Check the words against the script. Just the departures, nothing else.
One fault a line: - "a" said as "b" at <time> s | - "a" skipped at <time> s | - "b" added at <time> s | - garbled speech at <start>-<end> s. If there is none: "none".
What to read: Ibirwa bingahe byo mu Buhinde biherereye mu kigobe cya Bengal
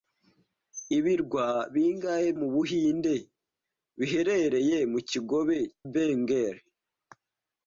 - "byo" skipped at 2.3 s
- "cya" skipped at 5.6 s